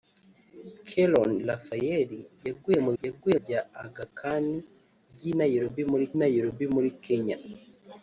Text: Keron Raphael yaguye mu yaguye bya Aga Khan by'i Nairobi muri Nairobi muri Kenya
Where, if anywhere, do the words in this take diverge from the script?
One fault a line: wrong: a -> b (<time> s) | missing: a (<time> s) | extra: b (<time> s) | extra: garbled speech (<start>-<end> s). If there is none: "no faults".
no faults